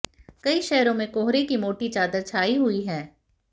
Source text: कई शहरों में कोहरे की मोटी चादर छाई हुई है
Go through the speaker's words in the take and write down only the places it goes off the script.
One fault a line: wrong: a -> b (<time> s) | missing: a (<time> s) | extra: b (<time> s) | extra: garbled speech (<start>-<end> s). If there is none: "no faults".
no faults